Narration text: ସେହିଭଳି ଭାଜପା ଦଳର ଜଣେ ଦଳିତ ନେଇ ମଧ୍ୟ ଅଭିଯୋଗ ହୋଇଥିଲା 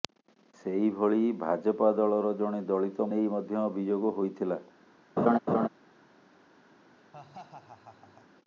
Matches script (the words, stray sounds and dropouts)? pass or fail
fail